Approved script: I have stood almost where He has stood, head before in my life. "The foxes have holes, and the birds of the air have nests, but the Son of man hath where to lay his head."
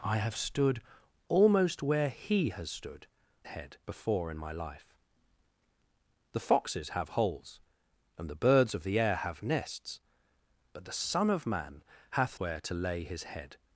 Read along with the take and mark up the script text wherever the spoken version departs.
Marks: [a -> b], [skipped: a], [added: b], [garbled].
I have stood almost where He has stood, head before in my life. "The foxes have holes, and the birds of the air have nests, but the Son of man hath where to lay his head."